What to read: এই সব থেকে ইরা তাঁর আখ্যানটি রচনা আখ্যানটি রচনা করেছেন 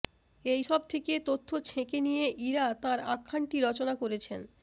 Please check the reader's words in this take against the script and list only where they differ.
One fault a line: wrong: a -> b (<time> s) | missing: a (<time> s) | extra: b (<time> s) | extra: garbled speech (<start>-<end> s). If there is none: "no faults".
extra: তথ্য ছেঁকে নিয়ে (1.3 s)
missing: আখ্যানটি রচনা (3.9 s)